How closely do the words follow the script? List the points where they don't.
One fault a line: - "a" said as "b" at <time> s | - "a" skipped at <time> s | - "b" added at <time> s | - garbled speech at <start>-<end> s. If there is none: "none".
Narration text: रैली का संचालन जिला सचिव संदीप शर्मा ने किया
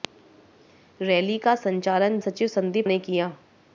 - "जिला" skipped at 2.2 s
- "शर्मा" skipped at 2.9 s